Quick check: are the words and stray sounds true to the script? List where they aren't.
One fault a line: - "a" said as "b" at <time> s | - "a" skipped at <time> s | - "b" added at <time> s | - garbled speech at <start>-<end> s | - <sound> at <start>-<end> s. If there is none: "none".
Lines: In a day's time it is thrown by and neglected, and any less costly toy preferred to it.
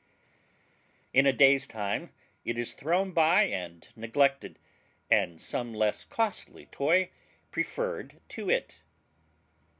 - "any" said as "some" at 5.4 s